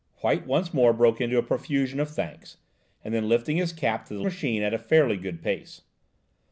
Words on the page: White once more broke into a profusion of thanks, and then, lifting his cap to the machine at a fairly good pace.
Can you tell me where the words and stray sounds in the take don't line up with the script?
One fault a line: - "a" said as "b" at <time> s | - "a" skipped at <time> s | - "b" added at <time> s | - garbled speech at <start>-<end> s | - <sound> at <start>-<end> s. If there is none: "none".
none